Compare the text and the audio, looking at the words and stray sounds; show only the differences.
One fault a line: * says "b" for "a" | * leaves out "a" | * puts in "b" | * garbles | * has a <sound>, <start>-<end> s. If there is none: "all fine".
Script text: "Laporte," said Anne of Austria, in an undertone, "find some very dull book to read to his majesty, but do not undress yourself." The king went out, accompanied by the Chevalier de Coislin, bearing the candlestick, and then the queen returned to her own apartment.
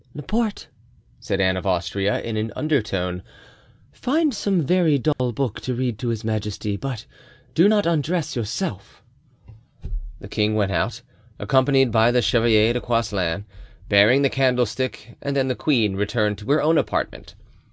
* has a dropout, 5.1-5.2 s